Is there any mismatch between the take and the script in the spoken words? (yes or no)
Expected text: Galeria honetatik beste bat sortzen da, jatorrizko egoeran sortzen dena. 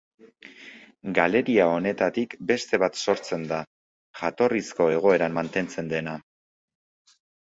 yes